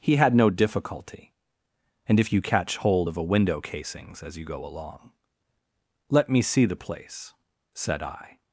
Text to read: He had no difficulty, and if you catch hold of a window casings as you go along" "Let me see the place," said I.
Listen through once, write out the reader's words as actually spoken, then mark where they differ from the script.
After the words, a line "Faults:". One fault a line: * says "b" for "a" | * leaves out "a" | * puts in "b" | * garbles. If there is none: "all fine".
He had no difficulty, and if you catch hold of a window casings as you go along" "Let me see the place," said I.
Faults:
all fine